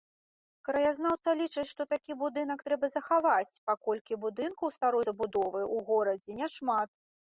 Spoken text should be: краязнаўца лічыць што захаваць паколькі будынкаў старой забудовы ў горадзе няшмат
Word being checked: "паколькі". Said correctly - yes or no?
yes